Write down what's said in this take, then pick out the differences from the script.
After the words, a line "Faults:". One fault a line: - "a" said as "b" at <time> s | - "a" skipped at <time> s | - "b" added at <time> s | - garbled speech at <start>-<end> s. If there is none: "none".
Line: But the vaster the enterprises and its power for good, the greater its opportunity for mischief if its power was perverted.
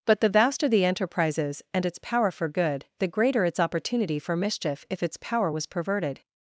But the vaster the enterprises and its power for good, the greater its opportunity for mischief if its power was perverted.
Faults:
none